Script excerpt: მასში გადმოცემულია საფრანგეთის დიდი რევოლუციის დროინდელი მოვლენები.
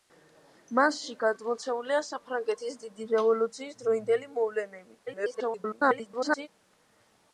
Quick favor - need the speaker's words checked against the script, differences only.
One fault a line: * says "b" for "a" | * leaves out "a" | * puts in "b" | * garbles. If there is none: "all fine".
* garbles